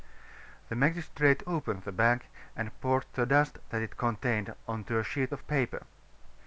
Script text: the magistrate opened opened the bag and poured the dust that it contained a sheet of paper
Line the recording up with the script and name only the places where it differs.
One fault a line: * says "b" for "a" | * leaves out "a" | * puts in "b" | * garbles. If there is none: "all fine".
* leaves out "opened"
* puts in "on to"